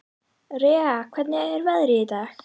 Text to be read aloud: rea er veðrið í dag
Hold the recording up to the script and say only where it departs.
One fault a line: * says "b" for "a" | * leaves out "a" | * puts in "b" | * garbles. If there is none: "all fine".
* puts in "hvernig"